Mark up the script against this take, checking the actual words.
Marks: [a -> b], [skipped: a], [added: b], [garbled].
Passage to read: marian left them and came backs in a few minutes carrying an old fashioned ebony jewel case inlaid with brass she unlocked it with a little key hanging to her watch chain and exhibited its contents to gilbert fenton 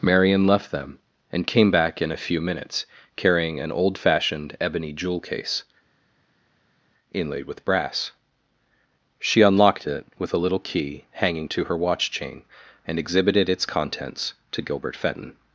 marian left them and came [backs -> back] in a few minutes carrying an old fashioned ebony jewel case inlaid with brass she unlocked it with a little key hanging to her watch chain and exhibited its contents to gilbert fenton